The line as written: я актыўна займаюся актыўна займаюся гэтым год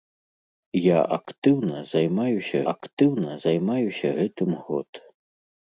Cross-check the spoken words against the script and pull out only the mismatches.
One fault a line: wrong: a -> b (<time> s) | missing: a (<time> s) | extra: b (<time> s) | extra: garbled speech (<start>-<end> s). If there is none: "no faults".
no faults